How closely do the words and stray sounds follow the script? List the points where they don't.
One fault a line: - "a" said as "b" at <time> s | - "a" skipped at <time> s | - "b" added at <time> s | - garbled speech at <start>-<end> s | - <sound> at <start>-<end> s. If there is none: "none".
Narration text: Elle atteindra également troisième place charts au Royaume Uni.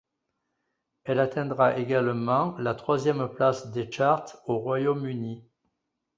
- "la" added at 2.6 s
- "des" added at 3.7 s